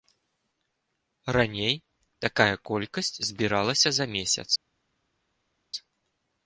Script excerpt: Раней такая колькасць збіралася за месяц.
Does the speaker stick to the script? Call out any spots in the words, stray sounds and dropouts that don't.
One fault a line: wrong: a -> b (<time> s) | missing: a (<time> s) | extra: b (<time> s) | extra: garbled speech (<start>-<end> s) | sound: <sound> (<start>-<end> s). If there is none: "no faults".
no faults